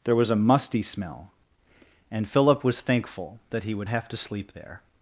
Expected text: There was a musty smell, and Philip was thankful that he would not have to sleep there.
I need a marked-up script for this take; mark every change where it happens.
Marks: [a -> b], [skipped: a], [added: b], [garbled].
There was a musty smell, and Philip was thankful that he would [skipped: not] have to sleep there.